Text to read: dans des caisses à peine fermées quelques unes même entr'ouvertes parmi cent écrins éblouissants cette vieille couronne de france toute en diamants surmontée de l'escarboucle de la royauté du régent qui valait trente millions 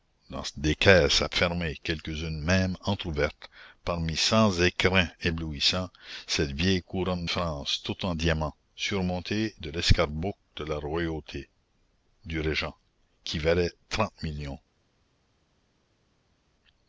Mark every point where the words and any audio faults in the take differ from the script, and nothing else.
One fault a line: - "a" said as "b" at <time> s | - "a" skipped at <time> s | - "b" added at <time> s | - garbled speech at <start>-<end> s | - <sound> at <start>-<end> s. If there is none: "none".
- "peine" skipped at 1.3 s
- "de" skipped at 7.3 s